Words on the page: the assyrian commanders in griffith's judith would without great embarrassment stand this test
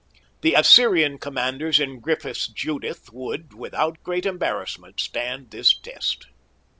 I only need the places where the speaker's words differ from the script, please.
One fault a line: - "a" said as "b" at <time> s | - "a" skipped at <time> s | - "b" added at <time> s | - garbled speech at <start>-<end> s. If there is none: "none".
none